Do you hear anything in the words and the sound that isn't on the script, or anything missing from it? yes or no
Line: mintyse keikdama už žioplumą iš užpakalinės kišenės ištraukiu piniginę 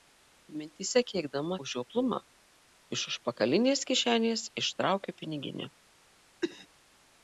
yes